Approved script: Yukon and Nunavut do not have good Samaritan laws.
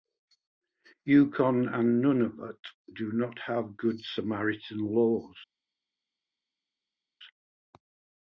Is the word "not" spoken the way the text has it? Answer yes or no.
yes